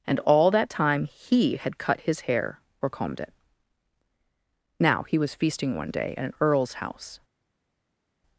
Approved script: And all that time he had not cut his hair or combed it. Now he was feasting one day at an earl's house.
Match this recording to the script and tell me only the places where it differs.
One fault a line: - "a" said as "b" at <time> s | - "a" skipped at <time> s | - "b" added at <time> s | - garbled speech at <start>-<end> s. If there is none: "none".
- "not" skipped at 1.8 s